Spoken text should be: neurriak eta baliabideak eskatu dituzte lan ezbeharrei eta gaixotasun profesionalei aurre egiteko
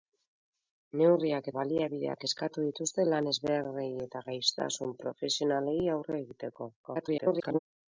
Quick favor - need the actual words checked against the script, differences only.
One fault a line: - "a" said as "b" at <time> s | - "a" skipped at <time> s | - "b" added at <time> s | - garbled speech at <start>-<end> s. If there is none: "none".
- "eta" skipped at 1.5 s
- garbled speech at 6.8-7.6 s